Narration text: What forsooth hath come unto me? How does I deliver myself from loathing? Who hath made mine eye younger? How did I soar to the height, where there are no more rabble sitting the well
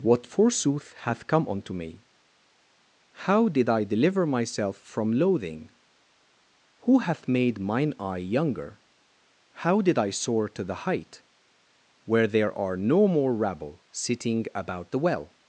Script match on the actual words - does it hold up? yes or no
no